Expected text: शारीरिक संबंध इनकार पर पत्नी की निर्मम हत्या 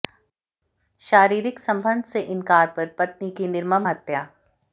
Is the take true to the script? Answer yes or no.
no